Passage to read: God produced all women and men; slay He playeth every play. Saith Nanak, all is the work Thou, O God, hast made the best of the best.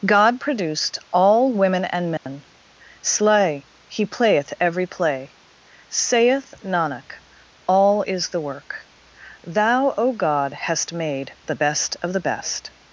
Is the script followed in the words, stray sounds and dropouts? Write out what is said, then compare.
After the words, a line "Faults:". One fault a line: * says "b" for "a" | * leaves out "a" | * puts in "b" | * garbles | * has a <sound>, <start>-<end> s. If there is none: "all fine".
God produced all women and men; slay He playeth every play. Saith Nanak, all is the work Thou, O God, hast made the best of the best.
Faults:
* has a dropout, 2.2-2.3 s